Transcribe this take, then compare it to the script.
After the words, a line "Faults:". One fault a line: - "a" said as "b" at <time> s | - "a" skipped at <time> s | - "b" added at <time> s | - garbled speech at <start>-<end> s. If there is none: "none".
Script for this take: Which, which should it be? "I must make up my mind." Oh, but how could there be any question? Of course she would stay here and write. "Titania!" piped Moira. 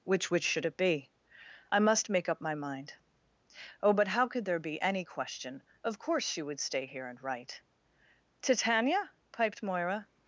Which, which should it be? "I must make up my mind." Oh, but how could there be any question? Of course she would stay here and write. "Titania!" piped Moira.
Faults:
none